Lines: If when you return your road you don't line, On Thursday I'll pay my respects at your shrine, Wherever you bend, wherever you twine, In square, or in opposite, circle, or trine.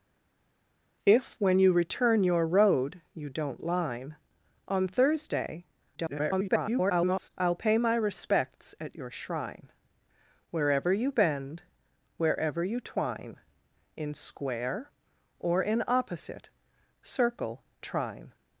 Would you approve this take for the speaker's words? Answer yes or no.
no